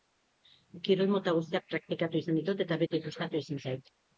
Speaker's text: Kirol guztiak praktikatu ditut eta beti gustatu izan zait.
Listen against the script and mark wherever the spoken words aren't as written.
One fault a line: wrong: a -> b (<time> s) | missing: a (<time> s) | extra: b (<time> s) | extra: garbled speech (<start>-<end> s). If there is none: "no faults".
extra: mota (1.1 s)
extra: izan (2.2 s)